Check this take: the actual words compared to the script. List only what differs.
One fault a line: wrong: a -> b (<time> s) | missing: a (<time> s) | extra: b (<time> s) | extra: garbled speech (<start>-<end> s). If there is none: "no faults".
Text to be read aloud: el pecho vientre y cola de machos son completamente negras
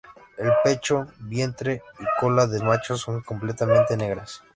no faults